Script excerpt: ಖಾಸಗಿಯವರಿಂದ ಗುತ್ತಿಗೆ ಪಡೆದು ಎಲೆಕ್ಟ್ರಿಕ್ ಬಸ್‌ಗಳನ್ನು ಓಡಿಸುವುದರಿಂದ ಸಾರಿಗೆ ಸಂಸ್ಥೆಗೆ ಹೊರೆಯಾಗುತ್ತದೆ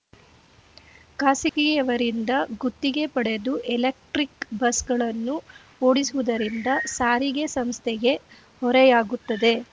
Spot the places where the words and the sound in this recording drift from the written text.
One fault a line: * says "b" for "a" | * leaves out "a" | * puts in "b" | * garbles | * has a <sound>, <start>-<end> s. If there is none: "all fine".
* has a dropout, 1.5-1.6 s